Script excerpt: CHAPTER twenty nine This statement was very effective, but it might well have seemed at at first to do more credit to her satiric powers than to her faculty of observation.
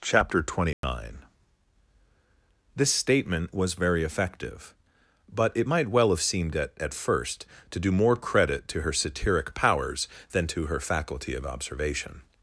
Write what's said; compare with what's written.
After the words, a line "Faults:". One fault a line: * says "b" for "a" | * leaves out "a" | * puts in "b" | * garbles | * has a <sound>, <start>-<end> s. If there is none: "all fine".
CHAPTER twenty nine This statement was very effective, but it might well have seemed at at first to do more credit to her satiric powers than to her faculty of observation.
Faults:
* has a dropout, 0.7-0.8 s